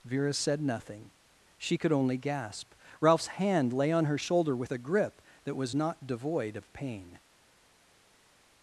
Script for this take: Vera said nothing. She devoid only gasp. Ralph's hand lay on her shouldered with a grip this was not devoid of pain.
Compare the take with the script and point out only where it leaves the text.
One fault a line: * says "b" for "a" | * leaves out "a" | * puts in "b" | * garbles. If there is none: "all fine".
* says "could" for "devoid"
* says "shoulder" for "shouldered"
* says "that" for "this"